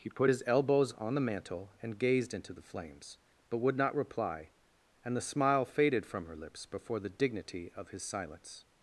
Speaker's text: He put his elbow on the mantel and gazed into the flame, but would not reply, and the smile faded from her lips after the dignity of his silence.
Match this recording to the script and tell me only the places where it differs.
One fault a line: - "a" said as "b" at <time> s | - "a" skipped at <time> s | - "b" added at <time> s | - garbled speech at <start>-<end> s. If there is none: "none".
- "elbow" said as "elbows" at 0.5 s
- "flame" said as "flames" at 2.6 s
- "after" said as "before" at 6.7 s